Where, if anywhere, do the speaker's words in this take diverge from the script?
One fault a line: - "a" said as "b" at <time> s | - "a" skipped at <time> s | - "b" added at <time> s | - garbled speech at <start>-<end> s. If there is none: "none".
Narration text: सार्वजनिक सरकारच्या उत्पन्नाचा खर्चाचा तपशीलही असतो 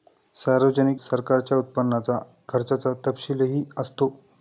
none